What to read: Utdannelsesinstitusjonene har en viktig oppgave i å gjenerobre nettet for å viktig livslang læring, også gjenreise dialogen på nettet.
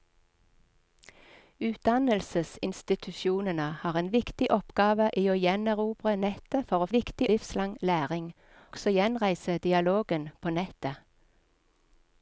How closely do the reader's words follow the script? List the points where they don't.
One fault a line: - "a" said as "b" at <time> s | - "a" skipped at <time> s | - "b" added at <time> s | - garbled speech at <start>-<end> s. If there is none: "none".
none